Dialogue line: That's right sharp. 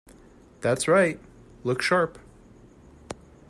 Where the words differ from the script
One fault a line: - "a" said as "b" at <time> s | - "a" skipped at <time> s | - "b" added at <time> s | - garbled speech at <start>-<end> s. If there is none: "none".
- "look" added at 1.6 s